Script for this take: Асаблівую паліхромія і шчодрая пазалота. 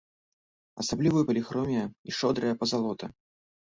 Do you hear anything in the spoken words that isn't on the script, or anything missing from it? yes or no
no